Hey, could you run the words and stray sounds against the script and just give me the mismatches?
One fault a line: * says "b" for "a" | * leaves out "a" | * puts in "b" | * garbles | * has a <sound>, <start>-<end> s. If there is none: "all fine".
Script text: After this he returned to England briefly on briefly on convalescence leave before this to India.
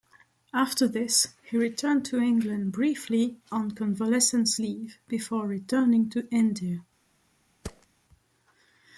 * leaves out "briefly on"
* says "returning" for "this"
* has a thud, 7.6-7.9 s